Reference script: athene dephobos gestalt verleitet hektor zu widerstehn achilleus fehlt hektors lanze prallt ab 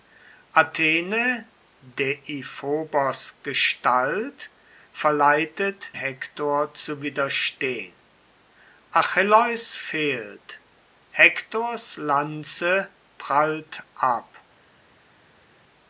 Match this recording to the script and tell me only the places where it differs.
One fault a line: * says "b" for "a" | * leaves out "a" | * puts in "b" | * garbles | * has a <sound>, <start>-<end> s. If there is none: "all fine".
all fine